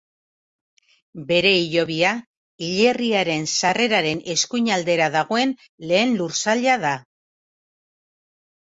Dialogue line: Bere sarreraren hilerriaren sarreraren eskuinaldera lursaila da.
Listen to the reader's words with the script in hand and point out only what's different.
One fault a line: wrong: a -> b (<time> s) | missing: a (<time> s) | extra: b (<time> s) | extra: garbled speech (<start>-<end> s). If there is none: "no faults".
wrong: sarreraren -> hilobia (1.6 s)
extra: dagoen lehen (5.2 s)